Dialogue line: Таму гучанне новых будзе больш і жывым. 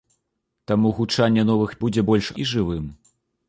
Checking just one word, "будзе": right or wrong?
right